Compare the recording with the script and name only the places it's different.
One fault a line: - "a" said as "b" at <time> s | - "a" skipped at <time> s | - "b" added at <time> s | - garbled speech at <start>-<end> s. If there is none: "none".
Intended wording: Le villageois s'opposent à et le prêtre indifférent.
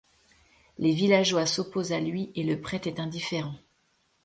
- "Le" said as "Les" at 0.8 s
- "lui" added at 2.0 s
- "est" added at 2.9 s